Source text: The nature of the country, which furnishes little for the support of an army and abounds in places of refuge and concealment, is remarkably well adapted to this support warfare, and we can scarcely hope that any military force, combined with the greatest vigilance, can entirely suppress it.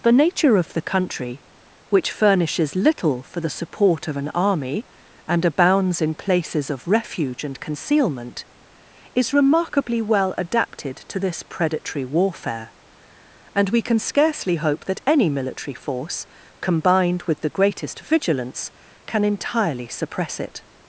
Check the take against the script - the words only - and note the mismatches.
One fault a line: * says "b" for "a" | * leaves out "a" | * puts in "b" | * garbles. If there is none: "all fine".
* says "predatory" for "support"